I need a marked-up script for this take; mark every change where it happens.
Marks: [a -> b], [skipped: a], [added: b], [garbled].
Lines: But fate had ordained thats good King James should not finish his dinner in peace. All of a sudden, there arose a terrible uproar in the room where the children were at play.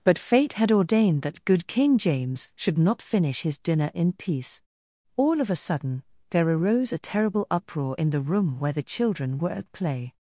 But fate had ordained [thats -> that] good King James should not finish his dinner in peace. All of a sudden, there arose a terrible uproar in the room where the children were at play.